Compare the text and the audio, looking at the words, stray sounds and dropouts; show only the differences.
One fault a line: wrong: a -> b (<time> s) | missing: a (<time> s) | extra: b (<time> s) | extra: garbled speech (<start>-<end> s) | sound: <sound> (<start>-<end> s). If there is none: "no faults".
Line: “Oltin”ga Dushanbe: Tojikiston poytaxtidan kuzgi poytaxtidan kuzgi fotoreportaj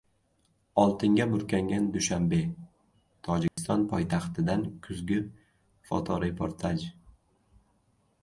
extra: burkangan (1.3 s)
sound: dropout (3.5-3.6 s)
missing: poytaxtidan kuzgi (5.2 s)